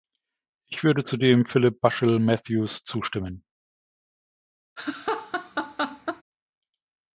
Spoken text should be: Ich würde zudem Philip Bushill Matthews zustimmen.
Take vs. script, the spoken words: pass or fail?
pass